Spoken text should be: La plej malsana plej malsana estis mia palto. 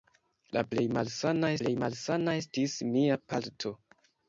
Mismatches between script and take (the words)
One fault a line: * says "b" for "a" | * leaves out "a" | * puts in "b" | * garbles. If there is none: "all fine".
all fine